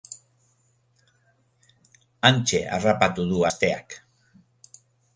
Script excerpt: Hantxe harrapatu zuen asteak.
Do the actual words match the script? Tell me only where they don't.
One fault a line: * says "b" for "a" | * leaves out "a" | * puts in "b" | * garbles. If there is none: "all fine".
* says "du" for "zuen"